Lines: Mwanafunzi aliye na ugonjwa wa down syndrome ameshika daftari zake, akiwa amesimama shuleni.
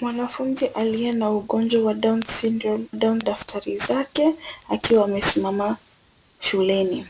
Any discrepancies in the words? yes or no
yes